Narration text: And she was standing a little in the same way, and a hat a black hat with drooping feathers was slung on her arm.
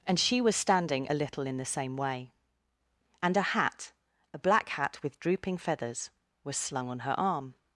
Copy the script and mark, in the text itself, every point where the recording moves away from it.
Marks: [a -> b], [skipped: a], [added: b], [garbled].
And she was standing a little in the same way, and a hat a black hat with drooping feathers was slung on her arm.